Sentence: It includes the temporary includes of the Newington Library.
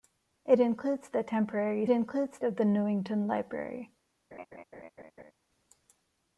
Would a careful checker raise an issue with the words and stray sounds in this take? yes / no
yes